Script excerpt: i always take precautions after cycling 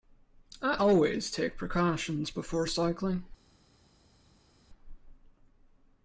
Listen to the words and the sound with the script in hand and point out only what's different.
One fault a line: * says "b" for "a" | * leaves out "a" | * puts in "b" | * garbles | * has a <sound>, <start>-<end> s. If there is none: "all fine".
* says "before" for "after"